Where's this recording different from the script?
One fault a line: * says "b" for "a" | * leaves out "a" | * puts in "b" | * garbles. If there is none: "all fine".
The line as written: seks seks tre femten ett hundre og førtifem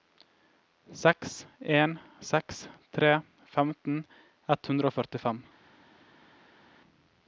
* puts in "en"